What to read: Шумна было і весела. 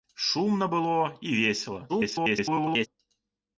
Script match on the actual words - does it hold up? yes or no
no